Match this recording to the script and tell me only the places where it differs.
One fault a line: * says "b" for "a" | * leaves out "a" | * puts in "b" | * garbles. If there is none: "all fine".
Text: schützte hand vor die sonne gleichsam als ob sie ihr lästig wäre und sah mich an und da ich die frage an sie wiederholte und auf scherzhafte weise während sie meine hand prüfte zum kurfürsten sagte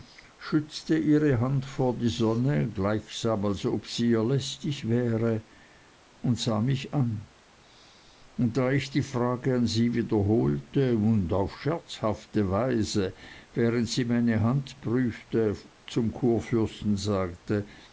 * puts in "ihre"